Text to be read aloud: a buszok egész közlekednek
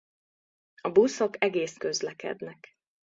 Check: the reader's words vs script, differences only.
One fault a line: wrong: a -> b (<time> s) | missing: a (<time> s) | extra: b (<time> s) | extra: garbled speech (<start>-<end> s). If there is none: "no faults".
no faults